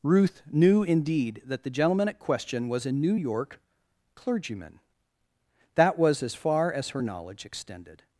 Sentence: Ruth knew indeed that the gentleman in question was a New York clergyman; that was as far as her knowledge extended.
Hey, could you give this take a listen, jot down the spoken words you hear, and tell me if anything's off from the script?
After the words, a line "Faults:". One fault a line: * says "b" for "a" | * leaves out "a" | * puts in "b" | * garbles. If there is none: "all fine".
Ruth knew indeed that the gentleman at question was a New York clergyman; that was as far as her knowledge extended.
Faults:
* says "at" for "in"